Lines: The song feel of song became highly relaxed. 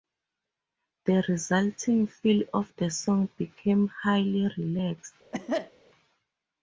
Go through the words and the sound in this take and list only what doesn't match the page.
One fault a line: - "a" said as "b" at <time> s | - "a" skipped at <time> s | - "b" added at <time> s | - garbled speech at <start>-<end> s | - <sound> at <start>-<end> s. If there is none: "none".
- "song" said as "resulting" at 1.3 s
- "the" added at 2.8 s
- cough at 5.3-5.7 s